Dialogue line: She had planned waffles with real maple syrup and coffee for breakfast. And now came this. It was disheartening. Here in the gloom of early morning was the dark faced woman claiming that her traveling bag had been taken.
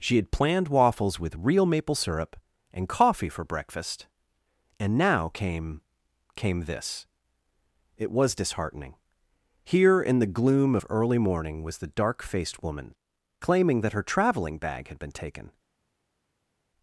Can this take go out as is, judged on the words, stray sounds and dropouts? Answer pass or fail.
fail